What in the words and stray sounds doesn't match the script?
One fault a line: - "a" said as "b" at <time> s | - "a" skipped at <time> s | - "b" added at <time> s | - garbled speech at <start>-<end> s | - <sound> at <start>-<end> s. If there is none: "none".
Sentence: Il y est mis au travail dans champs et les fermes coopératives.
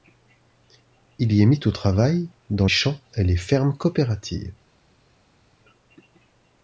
none